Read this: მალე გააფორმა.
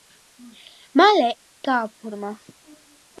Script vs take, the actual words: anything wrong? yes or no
no